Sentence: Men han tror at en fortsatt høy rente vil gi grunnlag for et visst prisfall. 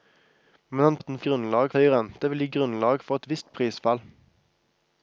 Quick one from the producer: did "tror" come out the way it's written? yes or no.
no